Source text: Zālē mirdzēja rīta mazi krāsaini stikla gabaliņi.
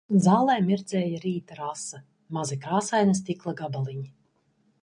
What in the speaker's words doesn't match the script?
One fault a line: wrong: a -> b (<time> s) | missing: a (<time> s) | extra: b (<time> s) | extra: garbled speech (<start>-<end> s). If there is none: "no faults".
extra: rasa (1.6 s)